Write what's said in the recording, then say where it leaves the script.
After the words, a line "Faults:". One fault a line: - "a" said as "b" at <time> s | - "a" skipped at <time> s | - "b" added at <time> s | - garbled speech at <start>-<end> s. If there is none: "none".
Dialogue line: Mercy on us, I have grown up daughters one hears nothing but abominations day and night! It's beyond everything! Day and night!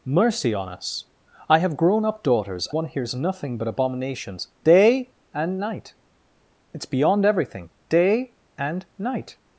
Mercy on us, I have grown up daughters one hears nothing but abominations day and night! It's beyond everything! Day and night!
Faults:
none